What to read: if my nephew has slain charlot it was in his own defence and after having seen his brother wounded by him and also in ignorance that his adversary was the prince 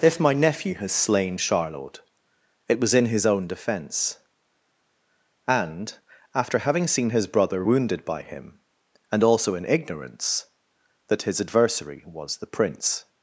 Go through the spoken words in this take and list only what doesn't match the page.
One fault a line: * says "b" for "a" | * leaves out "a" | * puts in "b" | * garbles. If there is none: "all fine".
all fine